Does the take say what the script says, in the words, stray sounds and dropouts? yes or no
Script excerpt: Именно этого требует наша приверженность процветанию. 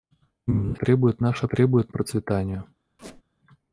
no